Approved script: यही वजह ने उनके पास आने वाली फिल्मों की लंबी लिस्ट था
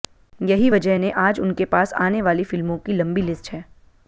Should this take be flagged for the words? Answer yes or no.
yes